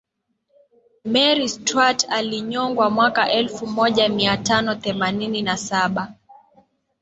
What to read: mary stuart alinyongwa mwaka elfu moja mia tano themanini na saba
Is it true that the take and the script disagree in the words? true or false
false